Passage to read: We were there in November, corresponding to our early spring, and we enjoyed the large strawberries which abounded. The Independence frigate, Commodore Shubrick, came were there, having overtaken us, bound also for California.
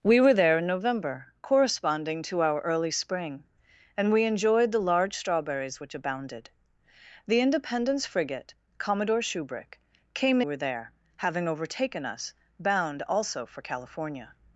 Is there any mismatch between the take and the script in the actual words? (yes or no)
no